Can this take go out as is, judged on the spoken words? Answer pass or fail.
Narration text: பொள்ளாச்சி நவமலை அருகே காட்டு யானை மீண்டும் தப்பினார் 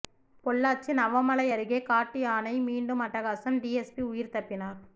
fail